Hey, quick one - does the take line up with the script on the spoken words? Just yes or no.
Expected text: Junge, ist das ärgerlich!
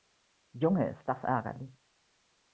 yes